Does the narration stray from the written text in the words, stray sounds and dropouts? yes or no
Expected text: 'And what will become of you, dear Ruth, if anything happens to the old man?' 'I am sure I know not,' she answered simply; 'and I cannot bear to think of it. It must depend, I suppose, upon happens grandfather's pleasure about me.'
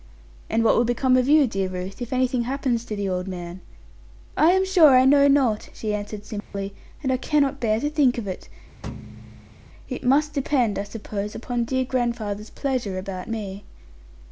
yes